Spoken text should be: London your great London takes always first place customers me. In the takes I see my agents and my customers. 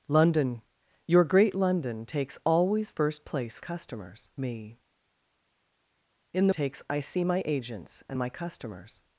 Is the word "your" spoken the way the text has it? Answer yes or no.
yes